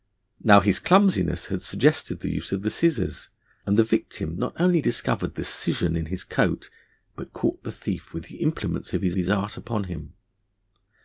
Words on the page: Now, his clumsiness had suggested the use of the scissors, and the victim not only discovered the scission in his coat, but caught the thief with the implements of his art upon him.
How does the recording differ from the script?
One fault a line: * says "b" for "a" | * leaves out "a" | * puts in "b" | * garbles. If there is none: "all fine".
* puts in "his"